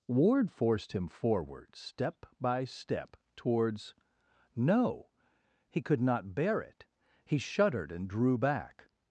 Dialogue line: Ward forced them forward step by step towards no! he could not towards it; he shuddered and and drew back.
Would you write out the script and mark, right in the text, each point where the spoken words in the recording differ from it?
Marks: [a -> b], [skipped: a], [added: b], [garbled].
Ward forced [them -> him] forward step by step towards no! he could not [towards -> bear] it; he shuddered and [skipped: and] drew back.